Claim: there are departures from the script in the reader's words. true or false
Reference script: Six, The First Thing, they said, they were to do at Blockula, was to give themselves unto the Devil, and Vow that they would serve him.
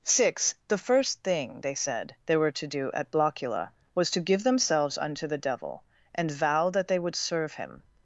false